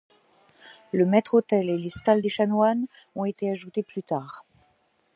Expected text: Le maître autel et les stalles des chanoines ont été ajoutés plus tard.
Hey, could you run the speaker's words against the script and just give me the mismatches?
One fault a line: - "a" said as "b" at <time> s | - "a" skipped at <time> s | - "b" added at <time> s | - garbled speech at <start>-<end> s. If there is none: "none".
none